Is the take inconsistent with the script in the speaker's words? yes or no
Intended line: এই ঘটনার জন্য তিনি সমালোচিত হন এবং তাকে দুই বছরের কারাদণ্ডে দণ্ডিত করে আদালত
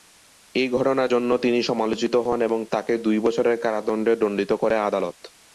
no